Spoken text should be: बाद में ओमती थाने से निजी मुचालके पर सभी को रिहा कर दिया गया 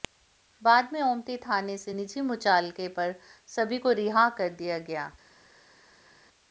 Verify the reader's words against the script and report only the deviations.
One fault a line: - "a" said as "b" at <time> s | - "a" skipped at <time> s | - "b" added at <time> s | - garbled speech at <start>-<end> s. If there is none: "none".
none